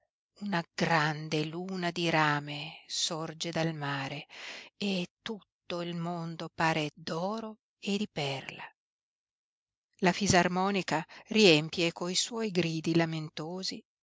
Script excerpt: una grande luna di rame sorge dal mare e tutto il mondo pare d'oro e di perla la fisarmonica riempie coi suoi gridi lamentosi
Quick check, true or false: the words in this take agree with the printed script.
true